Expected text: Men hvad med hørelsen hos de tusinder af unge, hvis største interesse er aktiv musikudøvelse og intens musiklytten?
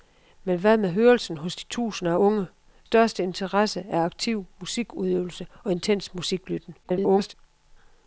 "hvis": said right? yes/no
no